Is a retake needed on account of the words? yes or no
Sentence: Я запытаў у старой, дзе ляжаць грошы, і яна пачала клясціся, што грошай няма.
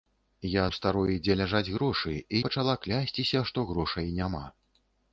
yes